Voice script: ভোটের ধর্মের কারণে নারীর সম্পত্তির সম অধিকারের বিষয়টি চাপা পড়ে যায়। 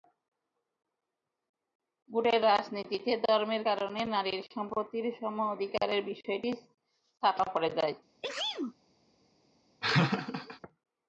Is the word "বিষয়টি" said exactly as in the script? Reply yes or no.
yes